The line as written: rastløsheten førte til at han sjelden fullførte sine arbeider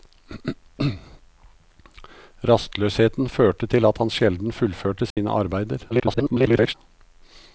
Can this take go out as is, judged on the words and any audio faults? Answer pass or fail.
fail